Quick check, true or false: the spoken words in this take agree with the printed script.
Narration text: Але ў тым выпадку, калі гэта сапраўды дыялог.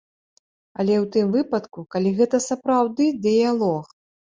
true